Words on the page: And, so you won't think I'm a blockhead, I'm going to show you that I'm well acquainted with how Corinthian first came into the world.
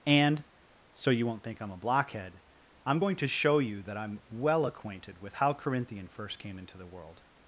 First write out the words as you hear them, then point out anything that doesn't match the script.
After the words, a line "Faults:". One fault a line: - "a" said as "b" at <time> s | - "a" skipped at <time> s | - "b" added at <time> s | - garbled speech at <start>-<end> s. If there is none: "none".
And, so you won't think I'm a blockhead, I'm going to show you that I'm well acquainted with how Corinthian first came into the world.
Faults:
none